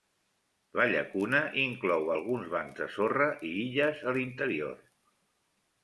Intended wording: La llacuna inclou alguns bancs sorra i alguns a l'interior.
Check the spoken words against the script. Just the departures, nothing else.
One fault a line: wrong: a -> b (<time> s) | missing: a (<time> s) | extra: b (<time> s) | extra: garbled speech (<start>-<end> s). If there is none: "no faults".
extra: de (2.8 s)
wrong: alguns -> illes (3.7 s)